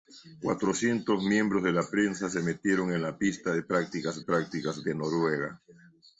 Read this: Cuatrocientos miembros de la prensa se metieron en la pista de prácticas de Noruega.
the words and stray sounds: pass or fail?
fail